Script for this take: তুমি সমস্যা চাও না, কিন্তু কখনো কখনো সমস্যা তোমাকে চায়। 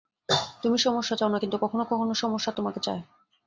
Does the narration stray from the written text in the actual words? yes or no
no